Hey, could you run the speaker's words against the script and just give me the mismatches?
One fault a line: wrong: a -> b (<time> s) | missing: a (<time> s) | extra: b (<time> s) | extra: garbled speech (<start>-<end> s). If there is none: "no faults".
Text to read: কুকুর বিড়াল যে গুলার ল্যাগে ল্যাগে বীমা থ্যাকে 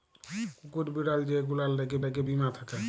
no faults